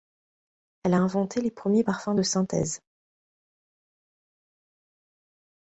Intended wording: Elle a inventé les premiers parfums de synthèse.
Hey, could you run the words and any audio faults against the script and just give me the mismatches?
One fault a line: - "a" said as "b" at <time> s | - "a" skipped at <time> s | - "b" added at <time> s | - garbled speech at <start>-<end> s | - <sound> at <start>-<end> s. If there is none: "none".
none